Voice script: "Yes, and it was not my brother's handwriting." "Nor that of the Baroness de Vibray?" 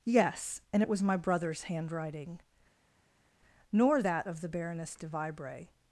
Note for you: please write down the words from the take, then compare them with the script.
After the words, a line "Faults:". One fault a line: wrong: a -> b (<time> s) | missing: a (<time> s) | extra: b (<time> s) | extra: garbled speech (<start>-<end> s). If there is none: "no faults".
"Yes, and it was my brother's handwriting." "Nor that of the Baroness de Vibray?"
Faults:
missing: not (1.0 s)